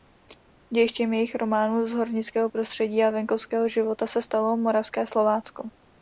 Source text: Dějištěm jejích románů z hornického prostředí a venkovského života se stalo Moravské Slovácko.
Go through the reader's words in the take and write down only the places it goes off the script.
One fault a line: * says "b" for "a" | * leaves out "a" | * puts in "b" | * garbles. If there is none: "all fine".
all fine